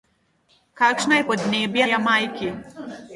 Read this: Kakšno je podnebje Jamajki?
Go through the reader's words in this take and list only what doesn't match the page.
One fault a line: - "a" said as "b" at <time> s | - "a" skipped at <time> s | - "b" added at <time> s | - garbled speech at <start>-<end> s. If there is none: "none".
none